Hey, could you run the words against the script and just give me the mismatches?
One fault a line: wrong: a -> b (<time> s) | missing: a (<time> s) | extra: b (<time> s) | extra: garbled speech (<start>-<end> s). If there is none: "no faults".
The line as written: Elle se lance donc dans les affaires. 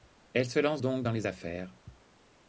no faults